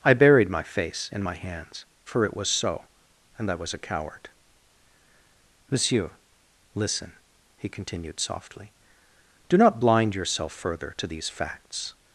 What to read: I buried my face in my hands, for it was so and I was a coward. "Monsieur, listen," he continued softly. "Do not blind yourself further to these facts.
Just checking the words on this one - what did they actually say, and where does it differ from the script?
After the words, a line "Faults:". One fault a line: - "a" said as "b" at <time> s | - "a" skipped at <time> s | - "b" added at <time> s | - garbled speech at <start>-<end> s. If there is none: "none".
I buried my face in my hands, for it was so and I was a coward. "Monsieur, listen," he continued softly. "Do not blind yourself further to these facts.
Faults:
none